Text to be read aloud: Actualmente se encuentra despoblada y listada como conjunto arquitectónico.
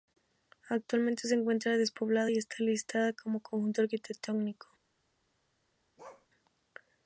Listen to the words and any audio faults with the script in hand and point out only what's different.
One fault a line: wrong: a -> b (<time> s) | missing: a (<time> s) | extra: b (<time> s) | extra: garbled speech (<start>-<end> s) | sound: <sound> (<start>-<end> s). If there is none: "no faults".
extra: está (2.4 s)
sound: bark (6.0-6.3 s)